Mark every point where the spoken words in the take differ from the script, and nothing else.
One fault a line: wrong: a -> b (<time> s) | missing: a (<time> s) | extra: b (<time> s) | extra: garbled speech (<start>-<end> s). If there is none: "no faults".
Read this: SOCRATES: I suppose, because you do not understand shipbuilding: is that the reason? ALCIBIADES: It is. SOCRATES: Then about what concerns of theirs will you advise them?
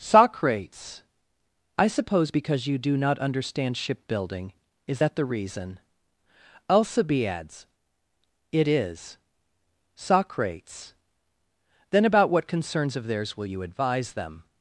no faults